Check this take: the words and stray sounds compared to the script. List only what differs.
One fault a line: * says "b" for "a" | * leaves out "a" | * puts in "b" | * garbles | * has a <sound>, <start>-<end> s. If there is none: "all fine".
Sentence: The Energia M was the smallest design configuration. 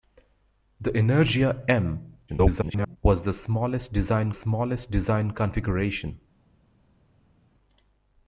* garbles
* puts in "smallest design"